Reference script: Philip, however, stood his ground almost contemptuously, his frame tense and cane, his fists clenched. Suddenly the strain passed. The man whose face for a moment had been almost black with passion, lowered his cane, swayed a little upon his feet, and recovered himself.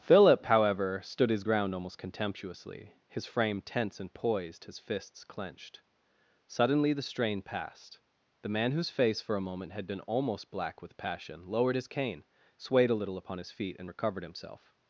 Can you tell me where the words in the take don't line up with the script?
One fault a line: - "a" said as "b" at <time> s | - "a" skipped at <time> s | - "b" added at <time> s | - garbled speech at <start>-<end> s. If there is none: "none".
- "cane" said as "poised" at 4.1 s